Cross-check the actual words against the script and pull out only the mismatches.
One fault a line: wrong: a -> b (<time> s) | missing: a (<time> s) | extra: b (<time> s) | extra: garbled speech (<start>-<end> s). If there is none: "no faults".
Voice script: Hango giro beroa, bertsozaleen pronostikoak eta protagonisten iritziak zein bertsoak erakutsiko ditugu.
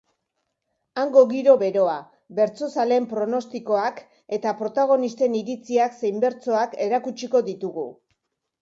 no faults